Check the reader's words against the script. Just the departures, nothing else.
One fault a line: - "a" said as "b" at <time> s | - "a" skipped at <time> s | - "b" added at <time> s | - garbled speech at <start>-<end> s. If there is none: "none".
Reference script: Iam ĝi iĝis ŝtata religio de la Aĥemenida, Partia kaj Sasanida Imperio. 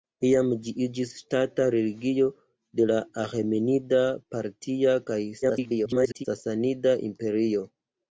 - garbled speech at 5.4-6.3 s